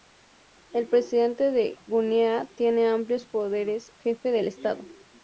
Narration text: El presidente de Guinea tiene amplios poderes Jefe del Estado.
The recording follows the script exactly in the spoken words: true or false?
true